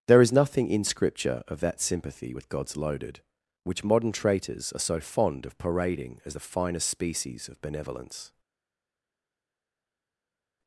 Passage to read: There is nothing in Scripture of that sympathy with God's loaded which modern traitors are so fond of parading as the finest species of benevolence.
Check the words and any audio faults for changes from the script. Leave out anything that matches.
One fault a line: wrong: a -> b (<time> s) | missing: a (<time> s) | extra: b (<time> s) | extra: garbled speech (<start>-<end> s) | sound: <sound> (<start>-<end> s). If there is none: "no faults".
no faults